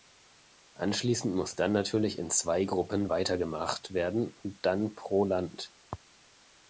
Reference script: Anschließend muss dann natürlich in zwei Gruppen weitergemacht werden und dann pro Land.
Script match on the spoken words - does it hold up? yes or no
yes